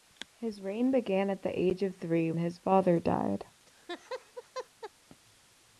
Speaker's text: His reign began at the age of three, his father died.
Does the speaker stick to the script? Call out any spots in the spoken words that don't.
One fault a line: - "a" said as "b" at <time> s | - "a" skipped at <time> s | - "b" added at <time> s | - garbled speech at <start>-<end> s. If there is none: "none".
none